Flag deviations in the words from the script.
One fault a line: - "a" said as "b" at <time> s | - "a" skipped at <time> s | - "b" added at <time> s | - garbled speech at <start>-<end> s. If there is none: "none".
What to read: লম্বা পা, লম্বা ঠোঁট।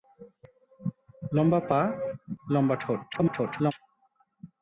- garbled speech at 3.1-3.7 s